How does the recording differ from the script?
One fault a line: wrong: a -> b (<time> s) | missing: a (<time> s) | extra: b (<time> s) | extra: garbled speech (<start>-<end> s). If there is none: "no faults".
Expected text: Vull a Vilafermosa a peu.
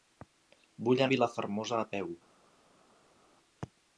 no faults